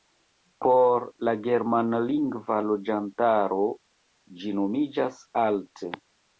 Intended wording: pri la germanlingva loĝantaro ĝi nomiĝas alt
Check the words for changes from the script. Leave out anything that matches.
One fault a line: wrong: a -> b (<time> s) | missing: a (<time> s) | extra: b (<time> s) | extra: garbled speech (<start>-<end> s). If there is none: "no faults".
wrong: pri -> por (0.7 s)